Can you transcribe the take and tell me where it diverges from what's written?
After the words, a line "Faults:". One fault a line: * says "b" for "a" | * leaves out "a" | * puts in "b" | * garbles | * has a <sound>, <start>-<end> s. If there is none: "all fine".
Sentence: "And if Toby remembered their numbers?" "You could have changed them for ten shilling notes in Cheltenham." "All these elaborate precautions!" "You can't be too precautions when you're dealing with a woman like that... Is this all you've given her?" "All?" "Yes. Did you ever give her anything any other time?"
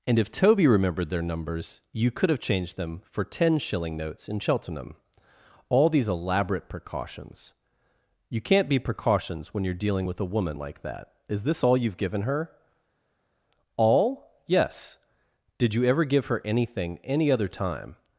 "And if Toby remembered their numbers?" "You could have changed them for ten shilling notes in Cheltenham." "All these elaborate precautions!" "You can't be precautions when you're dealing with a woman like that... Is this all you've given her?" "All?" "Yes. Did you ever give her anything any other time?"
Faults:
* leaves out "too"